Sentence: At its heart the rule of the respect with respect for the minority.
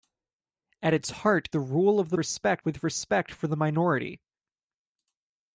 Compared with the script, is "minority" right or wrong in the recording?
right